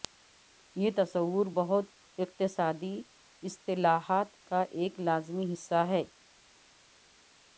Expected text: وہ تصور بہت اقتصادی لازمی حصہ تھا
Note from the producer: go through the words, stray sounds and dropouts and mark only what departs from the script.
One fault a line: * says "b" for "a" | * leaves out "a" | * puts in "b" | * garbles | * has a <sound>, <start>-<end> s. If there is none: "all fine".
* says "یہ" for "وہ"
* puts in "اصطلاحات کا ایک"
* says "ہے" for "تھا"